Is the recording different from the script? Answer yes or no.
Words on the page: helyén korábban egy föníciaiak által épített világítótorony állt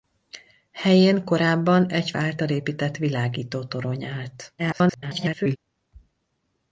yes